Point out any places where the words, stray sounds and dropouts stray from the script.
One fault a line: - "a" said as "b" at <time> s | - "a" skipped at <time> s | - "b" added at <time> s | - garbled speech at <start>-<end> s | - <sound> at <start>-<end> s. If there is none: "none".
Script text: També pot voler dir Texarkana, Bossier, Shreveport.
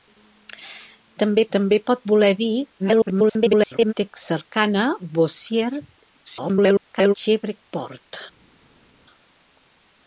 - "també" added at 1.6 s
- garbled speech at 2.8-3.9 s
- garbled speech at 6.2-7.1 s